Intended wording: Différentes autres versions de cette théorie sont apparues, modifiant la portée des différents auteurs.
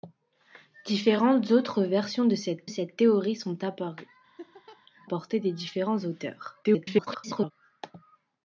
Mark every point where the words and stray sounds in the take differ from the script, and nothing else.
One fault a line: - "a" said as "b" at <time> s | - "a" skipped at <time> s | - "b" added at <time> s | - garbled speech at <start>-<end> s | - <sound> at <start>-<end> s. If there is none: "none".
- "cette" added at 2.6 s
- "modifiant la" skipped at 4.1 s
- laugh at 4.4-4.8 s
- garbled speech at 6.6-7.5 s